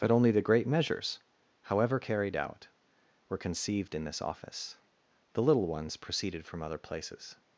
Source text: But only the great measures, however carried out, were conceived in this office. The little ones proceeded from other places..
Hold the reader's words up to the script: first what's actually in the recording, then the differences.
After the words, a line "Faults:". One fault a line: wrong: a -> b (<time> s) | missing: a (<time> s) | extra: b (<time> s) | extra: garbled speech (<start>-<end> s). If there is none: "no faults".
But only the great measures, however carried out, were conceived in this office. The little ones proceeded from other places..
Faults:
no faults